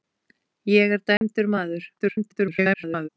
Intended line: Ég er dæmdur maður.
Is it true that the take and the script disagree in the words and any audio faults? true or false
true